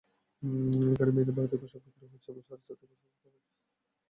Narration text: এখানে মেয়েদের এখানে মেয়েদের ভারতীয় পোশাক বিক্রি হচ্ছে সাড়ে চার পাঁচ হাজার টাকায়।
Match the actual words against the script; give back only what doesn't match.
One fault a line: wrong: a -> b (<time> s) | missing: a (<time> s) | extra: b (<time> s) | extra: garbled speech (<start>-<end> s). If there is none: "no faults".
missing: এখানে মেয়েদের (1.4 s)
extra: থেকে (2.8 s)